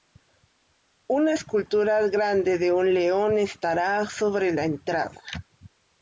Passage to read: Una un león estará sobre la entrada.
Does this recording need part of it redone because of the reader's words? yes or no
yes